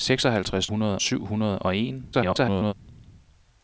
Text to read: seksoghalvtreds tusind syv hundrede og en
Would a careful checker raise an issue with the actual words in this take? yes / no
yes